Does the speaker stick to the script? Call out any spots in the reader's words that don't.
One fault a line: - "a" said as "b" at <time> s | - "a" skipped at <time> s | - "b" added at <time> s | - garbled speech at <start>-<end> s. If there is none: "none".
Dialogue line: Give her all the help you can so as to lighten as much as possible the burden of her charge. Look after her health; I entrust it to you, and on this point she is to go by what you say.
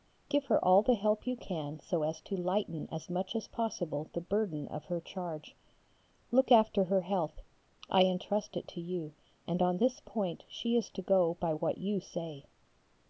none